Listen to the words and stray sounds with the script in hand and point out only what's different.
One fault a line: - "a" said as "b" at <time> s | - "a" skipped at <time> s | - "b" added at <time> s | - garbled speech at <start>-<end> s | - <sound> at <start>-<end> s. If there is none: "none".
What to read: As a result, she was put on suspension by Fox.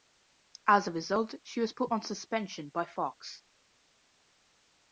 none